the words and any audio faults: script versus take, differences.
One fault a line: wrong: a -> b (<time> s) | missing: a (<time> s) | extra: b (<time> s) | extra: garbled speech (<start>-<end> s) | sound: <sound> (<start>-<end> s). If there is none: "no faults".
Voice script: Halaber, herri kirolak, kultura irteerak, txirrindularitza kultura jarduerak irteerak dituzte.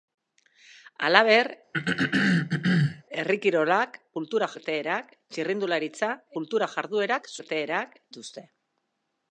sound: throat clearing (1.7-3.0 s)